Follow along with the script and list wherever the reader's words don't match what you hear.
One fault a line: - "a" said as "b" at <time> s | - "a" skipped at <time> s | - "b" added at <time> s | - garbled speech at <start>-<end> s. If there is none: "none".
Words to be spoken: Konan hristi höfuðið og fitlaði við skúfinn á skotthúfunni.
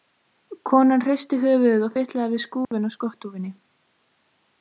none